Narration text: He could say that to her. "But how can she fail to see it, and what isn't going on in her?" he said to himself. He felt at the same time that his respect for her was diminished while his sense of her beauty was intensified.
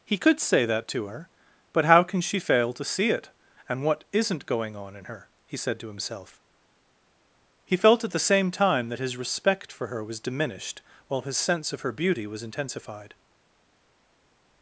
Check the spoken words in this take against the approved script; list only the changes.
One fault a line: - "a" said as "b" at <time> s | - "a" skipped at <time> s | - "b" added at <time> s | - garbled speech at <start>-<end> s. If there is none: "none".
none